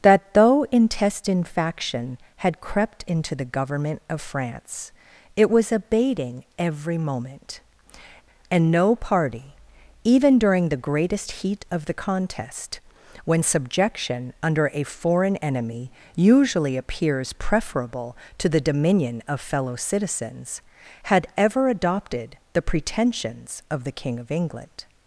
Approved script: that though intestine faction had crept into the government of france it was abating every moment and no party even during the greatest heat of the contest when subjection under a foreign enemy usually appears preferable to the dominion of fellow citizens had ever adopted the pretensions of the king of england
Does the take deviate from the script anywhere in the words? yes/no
no